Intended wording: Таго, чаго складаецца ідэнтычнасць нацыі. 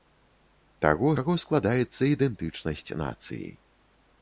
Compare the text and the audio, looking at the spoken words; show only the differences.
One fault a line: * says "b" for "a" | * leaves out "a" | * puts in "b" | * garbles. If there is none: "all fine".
all fine